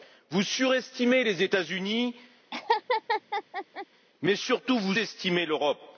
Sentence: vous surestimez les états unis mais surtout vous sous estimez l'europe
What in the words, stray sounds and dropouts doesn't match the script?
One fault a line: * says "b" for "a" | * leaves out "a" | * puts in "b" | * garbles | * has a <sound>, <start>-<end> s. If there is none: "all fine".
* has a laugh, 2.5-3.9 s
* leaves out "sous"